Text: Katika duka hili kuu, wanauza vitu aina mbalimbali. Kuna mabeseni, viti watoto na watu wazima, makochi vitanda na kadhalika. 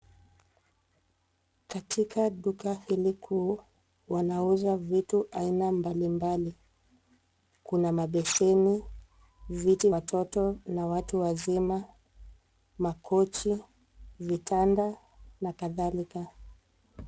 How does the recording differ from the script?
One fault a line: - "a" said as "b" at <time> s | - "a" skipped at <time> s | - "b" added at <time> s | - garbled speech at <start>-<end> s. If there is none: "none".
none